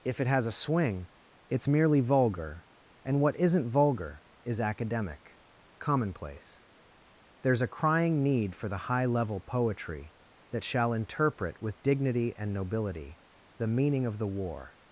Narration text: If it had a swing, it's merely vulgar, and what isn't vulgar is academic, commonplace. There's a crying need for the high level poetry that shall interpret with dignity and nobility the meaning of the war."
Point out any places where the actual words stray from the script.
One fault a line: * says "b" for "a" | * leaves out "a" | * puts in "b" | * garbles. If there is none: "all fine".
* says "has" for "had"